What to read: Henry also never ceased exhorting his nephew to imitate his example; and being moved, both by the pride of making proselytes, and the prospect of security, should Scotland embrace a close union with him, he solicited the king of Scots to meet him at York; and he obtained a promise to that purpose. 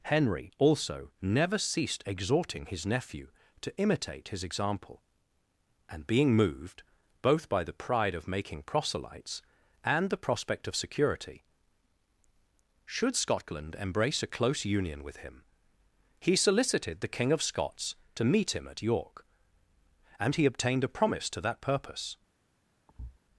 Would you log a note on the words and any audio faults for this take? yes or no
yes